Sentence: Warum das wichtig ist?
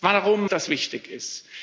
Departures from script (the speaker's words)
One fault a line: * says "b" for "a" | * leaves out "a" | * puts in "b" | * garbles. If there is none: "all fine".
all fine